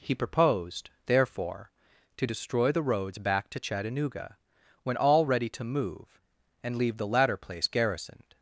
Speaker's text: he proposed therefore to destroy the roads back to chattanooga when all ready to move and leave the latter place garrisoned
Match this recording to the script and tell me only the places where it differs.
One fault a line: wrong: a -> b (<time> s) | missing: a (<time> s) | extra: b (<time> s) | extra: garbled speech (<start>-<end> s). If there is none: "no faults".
no faults